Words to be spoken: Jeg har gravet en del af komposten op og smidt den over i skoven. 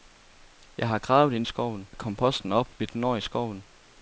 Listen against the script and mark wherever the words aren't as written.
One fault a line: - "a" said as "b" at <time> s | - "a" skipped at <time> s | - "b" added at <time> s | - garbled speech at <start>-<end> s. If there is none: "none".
- "del" said as "skoven" at 1.4 s
- "og" skipped at 2.7 s